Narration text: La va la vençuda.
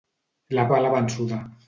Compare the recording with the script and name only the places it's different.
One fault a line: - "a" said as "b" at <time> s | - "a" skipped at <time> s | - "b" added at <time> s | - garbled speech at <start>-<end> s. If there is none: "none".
none